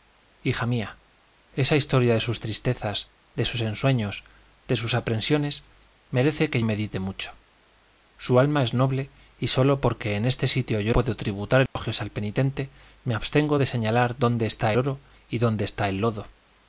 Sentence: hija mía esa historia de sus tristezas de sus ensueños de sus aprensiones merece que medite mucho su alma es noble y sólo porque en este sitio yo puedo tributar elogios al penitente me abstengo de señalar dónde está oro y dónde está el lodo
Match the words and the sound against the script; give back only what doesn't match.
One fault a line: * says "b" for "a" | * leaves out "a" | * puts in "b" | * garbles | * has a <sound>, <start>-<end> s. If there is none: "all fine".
* has a dropout, 11.7-11.8 s